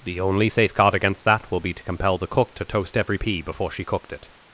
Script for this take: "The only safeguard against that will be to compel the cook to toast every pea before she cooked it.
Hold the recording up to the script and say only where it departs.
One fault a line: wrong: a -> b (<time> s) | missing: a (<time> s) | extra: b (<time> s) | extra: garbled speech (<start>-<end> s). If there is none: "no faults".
no faults